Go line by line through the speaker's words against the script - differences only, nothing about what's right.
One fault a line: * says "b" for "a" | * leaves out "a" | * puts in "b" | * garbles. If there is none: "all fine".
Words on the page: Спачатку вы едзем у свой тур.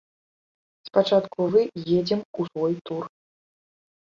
all fine